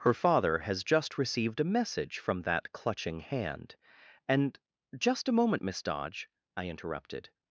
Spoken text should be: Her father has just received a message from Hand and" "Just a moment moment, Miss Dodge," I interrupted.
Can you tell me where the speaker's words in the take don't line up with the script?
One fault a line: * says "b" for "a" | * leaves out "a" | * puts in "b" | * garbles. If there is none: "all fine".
* puts in "that Clutching"
* leaves out "moment"